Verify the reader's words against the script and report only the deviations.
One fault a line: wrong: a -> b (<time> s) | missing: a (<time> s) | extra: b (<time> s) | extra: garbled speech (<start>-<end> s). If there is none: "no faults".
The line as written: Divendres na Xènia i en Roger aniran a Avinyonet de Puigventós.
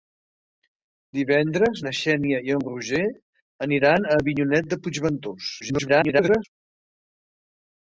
extra: garbled speech (5.6-6.4 s)